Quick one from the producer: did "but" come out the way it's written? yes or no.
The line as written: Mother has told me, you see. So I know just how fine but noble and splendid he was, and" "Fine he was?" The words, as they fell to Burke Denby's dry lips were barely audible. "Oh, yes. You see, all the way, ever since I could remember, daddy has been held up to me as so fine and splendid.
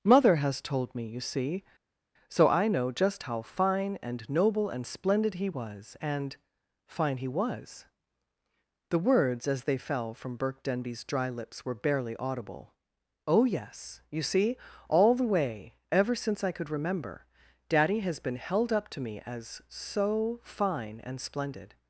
no